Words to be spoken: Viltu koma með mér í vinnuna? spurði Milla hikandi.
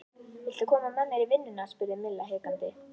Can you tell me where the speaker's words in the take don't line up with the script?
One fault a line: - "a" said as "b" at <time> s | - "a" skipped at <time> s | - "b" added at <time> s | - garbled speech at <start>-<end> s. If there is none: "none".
none